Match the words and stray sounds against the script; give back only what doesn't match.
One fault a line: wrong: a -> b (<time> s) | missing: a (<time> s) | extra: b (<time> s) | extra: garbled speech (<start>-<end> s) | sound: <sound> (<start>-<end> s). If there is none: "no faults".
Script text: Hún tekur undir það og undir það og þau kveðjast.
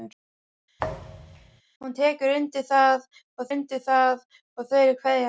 sound: thud (0.8-1.6 s)